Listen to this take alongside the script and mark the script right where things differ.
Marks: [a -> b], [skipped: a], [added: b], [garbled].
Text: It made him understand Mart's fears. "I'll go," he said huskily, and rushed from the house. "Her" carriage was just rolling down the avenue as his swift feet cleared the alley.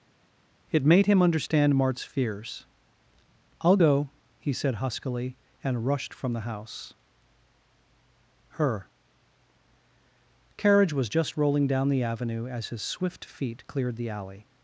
It made him understand Mart's fears. "I'll go," he said huskily, and rushed from the house. "Her" carriage was just rolling down the avenue as his swift feet cleared the alley.